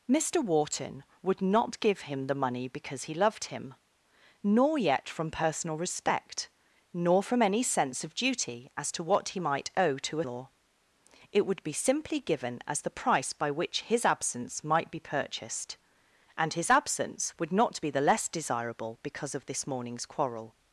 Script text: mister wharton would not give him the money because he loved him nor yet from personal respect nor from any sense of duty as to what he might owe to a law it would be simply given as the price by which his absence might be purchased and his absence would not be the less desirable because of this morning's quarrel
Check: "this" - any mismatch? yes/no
no